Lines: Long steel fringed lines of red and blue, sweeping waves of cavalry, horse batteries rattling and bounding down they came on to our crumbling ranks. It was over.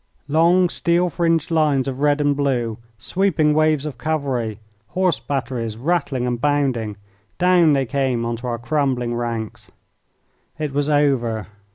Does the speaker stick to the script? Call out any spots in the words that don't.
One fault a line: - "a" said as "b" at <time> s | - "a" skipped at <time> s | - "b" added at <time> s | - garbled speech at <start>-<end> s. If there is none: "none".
none